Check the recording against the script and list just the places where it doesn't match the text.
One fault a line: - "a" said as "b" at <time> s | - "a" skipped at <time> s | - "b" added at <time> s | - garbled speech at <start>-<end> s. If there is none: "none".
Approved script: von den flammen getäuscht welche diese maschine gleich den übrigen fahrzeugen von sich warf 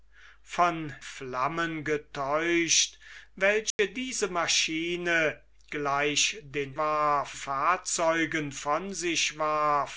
- "den" skipped at 0.9 s
- "übrigen" said as "warf" at 6.8 s